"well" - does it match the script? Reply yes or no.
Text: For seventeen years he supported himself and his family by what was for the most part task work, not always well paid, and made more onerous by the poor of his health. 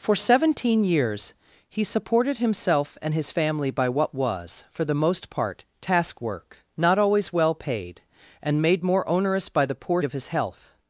yes